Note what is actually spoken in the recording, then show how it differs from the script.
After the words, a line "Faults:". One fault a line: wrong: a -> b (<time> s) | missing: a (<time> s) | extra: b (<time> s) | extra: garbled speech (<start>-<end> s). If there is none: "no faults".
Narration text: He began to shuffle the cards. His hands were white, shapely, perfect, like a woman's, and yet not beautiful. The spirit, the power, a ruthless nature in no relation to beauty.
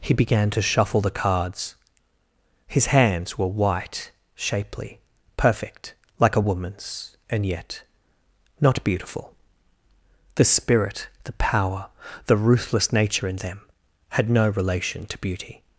He began to shuffle the cards. His hands were white, shapely, perfect, like a woman's, and yet not beautiful. The spirit, the power, the ruthless nature in them had no relation to beauty.
Faults:
wrong: a -> the (12.3 s)
extra: them had (13.4 s)